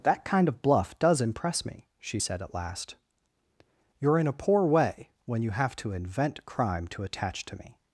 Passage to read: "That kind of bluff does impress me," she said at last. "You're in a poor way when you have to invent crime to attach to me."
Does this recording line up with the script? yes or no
yes